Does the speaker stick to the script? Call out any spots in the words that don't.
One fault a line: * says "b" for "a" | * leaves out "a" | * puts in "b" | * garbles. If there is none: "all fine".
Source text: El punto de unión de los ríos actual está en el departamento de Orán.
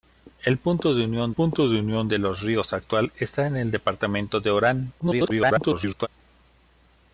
* puts in "punto de unión"
* garbles